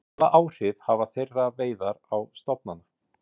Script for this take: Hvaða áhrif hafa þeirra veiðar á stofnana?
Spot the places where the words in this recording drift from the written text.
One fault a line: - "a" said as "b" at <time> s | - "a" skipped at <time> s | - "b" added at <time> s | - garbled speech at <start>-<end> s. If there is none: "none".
none